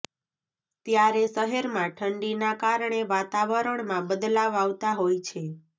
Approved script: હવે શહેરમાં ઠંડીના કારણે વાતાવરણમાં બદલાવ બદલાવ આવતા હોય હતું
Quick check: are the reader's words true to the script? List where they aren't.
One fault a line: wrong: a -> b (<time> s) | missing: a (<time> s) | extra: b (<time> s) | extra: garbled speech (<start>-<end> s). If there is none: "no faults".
wrong: હવે -> ત્યારે (0.8 s)
missing: બદલાવ (4.6 s)
wrong: હતું -> છે (5.3 s)